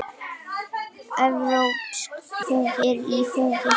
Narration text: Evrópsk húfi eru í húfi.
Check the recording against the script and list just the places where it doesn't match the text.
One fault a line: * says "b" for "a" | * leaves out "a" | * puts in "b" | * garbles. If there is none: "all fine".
all fine